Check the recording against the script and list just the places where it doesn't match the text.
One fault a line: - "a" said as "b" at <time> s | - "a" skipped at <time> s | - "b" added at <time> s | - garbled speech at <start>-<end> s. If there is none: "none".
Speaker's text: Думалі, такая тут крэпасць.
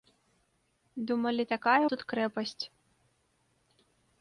none